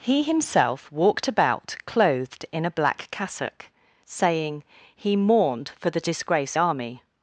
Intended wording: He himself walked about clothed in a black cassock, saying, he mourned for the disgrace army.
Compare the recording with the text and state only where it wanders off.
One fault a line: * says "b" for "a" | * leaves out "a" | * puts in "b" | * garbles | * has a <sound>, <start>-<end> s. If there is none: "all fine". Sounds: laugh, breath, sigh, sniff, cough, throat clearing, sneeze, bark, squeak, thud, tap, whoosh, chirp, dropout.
all fine